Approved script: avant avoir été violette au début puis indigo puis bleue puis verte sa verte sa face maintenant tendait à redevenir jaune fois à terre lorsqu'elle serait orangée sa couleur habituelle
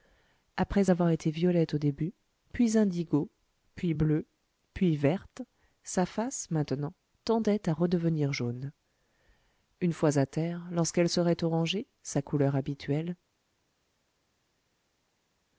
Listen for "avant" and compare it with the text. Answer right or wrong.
wrong